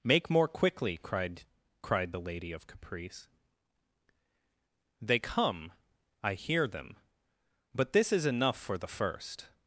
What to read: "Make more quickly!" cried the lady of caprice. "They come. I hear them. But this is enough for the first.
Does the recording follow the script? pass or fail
fail